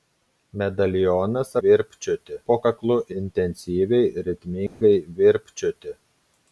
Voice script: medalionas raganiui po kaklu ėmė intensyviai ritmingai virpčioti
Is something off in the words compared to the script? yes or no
yes